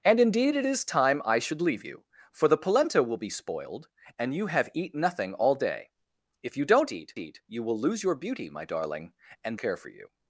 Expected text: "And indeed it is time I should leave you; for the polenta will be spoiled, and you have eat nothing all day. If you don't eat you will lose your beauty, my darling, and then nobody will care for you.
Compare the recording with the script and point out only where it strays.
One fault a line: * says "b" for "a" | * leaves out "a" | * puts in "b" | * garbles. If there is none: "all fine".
* puts in "eat"
* leaves out "then nobody will"